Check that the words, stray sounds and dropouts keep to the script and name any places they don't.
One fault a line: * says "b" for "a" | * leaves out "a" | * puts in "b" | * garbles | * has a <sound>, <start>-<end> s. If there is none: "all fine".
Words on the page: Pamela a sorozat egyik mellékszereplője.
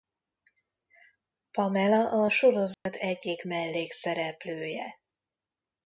* has a dropout, 2.7-2.9 s